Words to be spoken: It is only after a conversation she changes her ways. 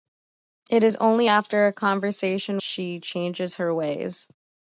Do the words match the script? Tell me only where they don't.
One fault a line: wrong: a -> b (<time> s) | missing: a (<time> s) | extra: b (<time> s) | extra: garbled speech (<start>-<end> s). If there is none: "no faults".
no faults